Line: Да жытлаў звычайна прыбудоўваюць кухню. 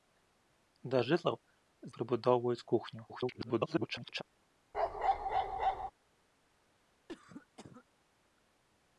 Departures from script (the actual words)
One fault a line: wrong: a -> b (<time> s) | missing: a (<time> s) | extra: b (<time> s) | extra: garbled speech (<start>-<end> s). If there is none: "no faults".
missing: звычайна (1.4 s)
extra: garbled speech (3.1-4.2 s)